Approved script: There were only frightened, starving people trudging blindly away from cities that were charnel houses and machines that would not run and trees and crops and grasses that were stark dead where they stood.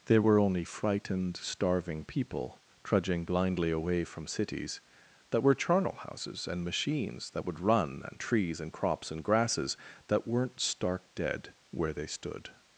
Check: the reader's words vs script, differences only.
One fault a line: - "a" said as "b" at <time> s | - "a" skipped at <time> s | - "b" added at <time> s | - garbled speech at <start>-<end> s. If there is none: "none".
- "not" skipped at 7.6 s
- "were" said as "weren't" at 10.3 s